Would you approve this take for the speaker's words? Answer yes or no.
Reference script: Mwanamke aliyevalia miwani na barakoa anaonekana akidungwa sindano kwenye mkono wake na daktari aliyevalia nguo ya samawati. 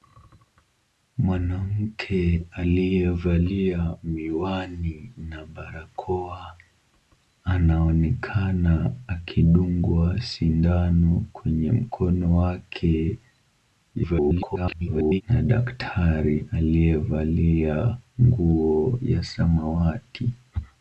no